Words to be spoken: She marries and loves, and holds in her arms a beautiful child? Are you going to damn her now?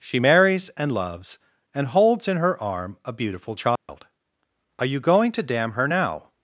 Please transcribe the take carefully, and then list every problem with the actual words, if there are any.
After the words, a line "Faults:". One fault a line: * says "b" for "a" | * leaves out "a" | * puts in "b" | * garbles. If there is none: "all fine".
She marries and loves, and holds in her arm a beautiful child? Are you going to damn her now?
Faults:
* says "arm" for "arms"